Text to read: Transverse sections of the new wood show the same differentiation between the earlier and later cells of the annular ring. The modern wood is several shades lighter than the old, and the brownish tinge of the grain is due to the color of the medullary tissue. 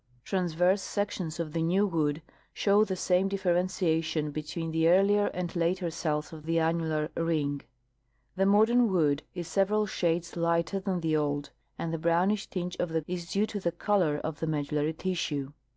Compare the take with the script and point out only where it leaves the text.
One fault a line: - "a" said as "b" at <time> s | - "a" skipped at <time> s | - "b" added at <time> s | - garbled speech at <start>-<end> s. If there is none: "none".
- "grain" skipped at 13.0 s